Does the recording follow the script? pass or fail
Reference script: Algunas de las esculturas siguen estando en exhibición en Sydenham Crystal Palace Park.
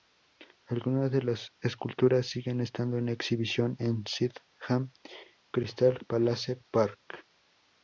pass